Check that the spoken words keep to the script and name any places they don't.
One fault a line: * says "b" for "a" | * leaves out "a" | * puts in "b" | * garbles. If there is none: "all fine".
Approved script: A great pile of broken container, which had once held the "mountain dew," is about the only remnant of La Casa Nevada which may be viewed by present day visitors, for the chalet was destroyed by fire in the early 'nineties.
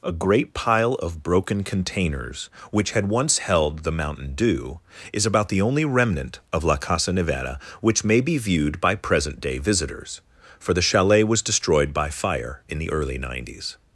* says "containers" for "container"